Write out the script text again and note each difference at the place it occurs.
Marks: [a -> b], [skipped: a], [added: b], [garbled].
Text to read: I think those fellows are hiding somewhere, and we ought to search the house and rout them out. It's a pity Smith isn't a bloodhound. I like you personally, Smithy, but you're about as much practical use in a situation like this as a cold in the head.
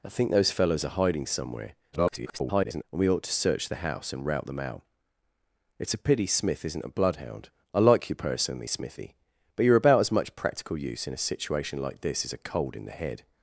I think those fellows are hiding somewhere, [garbled] and we ought to search the house and rout them out. It's a pity Smith isn't a bloodhound. I like you personally, Smithy, but you're about as much practical use in a situation like this as a cold in the head.